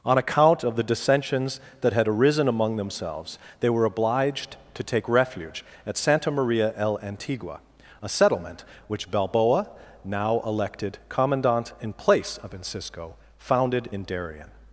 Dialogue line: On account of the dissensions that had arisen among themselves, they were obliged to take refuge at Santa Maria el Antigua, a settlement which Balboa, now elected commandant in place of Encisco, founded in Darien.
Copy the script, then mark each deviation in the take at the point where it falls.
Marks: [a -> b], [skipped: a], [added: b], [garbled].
On account of the dissensions that had arisen among themselves, they were obliged to take refuge at Santa Maria el Antigua, a settlement which Balboa, now elected commandant in place of Encisco, founded in Darien.